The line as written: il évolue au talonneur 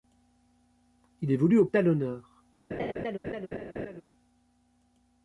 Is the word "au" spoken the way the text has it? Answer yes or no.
yes